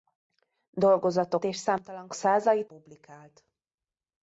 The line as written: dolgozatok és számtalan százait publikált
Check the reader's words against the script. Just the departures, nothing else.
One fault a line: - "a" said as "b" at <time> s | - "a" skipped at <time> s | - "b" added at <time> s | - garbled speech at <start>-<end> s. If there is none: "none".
none